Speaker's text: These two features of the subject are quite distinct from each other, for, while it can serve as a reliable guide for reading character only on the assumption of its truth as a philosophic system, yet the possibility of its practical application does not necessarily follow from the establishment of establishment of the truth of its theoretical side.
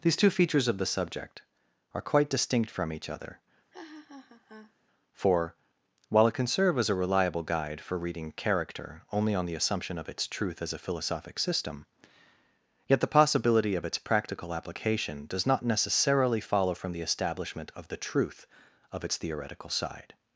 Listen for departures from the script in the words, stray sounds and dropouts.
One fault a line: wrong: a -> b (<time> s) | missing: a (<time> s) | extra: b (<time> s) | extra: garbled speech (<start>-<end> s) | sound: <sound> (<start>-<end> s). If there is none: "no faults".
sound: laugh (3.7-4.7 s)
missing: establishment of (17.9 s)